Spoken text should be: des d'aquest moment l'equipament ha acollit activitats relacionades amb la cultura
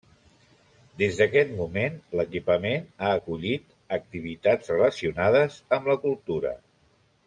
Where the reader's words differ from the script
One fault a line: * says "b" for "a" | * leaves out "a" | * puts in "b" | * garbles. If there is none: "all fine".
all fine